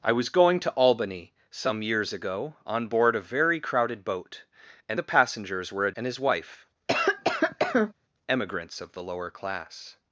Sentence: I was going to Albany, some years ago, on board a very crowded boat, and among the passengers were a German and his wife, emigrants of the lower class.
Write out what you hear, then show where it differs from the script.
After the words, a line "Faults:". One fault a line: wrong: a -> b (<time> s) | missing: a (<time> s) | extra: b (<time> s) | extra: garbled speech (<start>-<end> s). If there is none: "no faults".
I was going to Albany, some years ago, on board a very crowded boat, and the passengers were a And his wife, emigrants of the lower class.
Faults:
missing: among (5.0 s)
missing: German (5.9 s)